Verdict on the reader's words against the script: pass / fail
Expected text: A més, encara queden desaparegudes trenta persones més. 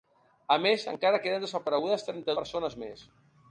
pass